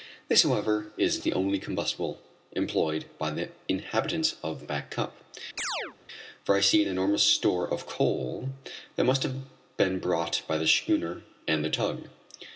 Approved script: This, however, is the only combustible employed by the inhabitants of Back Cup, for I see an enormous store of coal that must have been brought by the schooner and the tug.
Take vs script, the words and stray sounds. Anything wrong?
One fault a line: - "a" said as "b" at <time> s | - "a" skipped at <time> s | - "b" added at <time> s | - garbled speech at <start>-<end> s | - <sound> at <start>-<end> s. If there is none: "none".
- chirp at 5.6-6.0 s